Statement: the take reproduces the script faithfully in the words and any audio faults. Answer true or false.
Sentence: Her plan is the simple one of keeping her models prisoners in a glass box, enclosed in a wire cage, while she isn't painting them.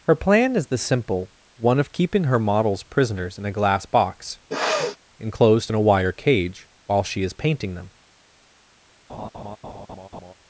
false